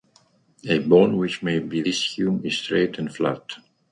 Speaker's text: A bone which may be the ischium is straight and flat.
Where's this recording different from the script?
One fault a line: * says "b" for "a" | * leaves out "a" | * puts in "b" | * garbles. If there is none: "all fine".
* leaves out "the"